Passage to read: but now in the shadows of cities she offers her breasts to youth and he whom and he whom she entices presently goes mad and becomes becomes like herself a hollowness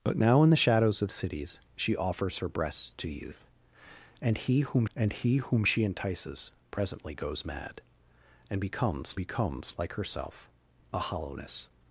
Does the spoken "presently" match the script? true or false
true